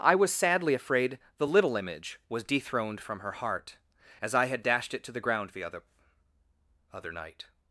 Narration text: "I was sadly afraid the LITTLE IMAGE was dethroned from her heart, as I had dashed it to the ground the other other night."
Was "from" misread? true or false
false